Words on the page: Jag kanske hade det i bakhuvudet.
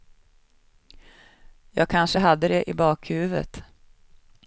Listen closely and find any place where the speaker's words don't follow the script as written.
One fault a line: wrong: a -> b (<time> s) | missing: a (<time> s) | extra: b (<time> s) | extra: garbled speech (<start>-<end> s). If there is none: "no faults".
no faults